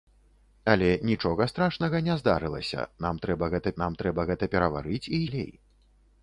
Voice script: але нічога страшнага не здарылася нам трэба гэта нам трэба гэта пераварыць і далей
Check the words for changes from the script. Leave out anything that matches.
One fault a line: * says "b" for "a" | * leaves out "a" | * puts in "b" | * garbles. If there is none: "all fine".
all fine